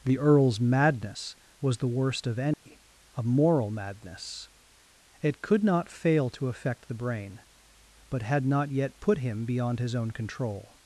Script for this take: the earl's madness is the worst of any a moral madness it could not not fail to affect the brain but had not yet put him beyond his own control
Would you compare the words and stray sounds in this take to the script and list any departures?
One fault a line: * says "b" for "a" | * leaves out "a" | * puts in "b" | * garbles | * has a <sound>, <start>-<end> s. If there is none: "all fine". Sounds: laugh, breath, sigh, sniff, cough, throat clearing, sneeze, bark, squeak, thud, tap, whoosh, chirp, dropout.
* says "was" for "is"
* has a dropout, 2.5-2.7 s
* leaves out "not"